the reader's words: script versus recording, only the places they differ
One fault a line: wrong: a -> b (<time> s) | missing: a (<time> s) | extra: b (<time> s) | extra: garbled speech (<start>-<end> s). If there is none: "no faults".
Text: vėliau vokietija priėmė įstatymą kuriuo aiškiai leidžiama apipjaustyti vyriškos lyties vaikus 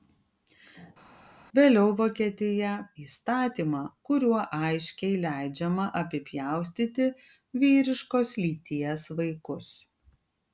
missing: priėmė (2.7 s)